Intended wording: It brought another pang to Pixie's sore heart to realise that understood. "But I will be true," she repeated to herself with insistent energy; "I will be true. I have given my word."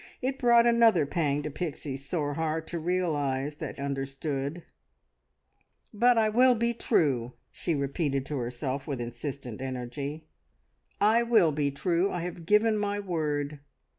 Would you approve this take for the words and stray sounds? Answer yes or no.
yes